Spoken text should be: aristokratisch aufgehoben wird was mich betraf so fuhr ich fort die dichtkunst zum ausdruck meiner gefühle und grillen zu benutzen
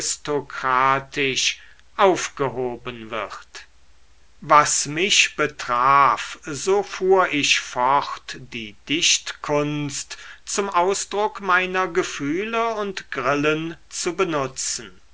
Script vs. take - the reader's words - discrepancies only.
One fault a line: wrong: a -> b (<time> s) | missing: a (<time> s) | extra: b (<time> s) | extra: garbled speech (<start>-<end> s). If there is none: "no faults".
no faults